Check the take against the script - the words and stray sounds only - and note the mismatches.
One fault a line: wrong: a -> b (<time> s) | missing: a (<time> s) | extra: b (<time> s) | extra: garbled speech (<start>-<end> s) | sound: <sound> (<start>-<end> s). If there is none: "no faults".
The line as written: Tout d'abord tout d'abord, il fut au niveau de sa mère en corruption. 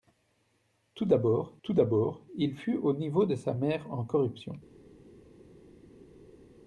no faults